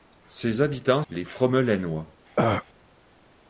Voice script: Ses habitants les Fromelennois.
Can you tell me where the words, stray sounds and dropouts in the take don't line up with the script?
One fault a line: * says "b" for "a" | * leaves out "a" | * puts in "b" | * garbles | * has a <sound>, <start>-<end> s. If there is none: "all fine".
* has a throat clearing, 2.4-2.6 s